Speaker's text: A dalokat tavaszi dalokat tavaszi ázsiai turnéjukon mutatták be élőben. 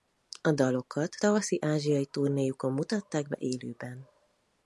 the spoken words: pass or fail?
fail